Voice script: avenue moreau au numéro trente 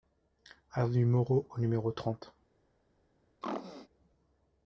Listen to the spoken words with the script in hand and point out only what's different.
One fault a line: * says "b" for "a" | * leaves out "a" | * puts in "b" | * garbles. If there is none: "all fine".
all fine